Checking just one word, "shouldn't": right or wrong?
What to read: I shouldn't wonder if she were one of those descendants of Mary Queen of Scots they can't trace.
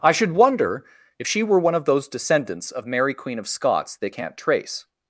wrong